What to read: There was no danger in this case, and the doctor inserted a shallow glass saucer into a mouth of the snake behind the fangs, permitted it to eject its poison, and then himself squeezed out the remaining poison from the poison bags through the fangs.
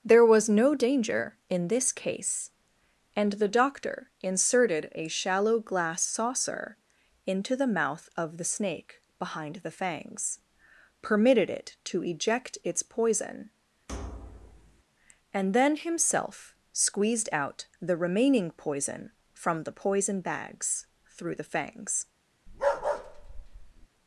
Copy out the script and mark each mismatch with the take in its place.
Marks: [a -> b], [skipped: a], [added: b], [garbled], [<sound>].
There was no danger in this case, and the doctor inserted a shallow glass saucer into [a -> the] mouth of the snake behind the fangs, permitted it to eject its poison, [thud] and then himself squeezed out the remaining poison from the poison bags through the fangs. [bark]